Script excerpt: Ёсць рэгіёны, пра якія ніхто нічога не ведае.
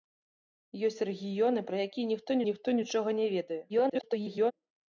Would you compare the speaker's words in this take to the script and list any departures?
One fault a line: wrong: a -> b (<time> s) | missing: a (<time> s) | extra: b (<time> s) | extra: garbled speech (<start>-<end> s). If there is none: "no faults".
extra: ніхто (2.5 s)
extra: garbled speech (3.7-4.5 s)